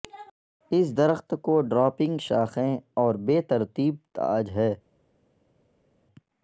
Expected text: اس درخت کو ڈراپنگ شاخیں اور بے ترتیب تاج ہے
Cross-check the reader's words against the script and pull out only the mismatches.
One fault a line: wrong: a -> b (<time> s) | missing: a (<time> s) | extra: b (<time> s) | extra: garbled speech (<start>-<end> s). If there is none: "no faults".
no faults